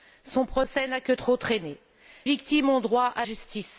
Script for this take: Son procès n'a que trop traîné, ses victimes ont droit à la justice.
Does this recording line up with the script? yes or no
no